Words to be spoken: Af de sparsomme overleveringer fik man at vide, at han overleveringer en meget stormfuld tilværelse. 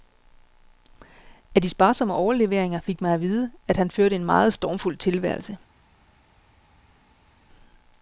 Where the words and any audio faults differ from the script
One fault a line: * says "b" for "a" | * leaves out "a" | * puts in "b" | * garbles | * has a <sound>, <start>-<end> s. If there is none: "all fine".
* says "førte" for "overleveringer"